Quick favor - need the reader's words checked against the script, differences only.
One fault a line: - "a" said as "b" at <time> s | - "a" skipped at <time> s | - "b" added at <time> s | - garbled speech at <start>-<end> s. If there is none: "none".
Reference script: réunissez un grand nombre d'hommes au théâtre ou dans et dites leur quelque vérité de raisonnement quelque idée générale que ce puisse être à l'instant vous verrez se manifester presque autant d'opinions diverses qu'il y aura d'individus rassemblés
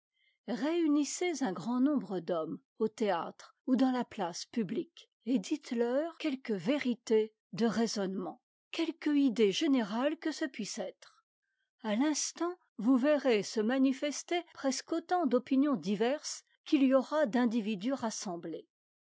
- "la place publique" added at 3.9 s